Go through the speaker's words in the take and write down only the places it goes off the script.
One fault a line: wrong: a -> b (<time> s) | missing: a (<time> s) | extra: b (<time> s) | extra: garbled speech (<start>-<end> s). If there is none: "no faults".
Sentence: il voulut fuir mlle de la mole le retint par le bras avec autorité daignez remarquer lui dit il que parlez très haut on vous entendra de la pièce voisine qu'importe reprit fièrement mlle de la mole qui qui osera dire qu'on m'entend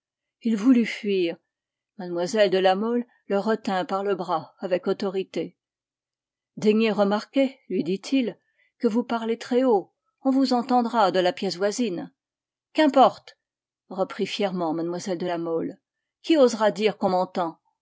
extra: vous (8.9 s)
missing: qui (16.4 s)